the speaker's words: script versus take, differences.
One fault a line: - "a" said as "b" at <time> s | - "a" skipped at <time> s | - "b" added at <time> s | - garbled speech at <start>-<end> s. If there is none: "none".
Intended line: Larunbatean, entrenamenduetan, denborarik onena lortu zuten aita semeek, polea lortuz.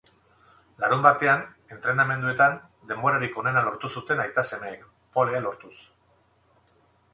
none